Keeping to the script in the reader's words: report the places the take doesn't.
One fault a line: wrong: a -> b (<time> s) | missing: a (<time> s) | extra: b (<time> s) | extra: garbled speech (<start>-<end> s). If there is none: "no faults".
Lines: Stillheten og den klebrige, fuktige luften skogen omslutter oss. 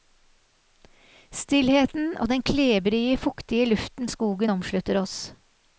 no faults